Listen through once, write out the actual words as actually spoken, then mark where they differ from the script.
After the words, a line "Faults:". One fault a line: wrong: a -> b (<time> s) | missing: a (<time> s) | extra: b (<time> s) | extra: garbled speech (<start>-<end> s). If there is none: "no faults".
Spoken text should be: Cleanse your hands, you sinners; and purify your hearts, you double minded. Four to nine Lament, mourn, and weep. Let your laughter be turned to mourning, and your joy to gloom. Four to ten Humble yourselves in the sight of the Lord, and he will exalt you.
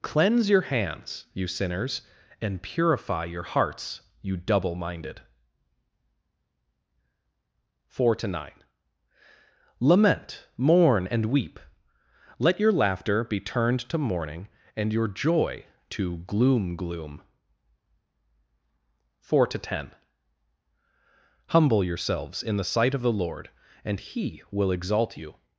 Cleanse your hands, you sinners; and purify your hearts, you double minded. Four to nine Lament, mourn, and weep. Let your laughter be turned to mourning, and your joy to gloom gloom. Four to ten Humble yourselves in the sight of the Lord, and he will exalt you.
Faults:
extra: gloom (16.8 s)